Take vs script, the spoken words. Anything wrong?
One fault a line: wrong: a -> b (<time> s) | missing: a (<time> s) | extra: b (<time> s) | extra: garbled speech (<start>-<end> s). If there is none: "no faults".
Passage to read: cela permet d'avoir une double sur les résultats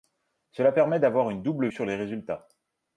no faults